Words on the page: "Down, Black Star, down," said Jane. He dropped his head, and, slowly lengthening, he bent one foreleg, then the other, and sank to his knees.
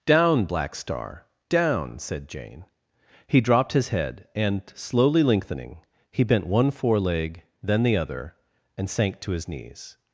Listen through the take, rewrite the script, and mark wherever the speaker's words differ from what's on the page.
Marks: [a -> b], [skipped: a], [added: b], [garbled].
"Down, Black Star, down," said Jane. He dropped his head, and, slowly lengthening, he bent one foreleg, then the other, and sank to his knees.